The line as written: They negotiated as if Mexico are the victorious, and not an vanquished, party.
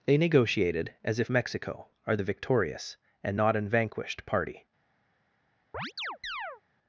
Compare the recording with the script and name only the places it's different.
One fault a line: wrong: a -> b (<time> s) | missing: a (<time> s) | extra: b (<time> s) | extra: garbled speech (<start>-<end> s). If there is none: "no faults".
no faults